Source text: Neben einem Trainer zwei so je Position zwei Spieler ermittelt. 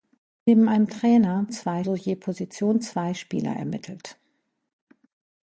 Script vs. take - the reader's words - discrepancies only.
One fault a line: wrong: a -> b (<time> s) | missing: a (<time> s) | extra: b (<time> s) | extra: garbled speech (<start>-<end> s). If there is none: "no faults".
no faults